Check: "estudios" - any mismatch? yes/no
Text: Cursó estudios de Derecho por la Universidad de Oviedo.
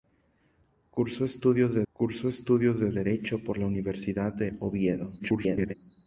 no